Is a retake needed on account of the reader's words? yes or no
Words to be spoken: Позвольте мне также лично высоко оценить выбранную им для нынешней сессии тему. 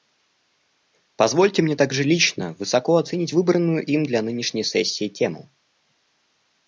no